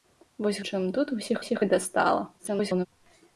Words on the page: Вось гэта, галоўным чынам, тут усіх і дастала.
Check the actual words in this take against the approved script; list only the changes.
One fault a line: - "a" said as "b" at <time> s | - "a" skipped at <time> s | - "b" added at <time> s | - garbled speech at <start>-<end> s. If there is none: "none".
- "гэта галоўным" skipped at 0.6 s
- "усіх" added at 1.4 s
- garbled speech at 2.4-2.9 s